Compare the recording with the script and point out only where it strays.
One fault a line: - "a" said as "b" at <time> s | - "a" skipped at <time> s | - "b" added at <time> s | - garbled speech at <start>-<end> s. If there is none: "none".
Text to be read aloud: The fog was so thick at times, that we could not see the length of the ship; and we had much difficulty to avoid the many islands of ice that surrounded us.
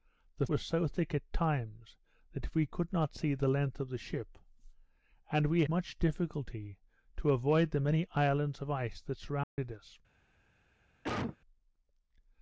- "fog" skipped at 0.5 s
- "had" skipped at 5.6 s